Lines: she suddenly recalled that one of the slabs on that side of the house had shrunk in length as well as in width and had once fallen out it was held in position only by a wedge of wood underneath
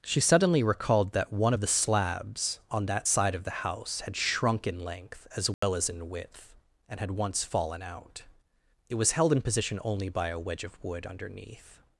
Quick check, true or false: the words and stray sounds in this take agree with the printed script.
false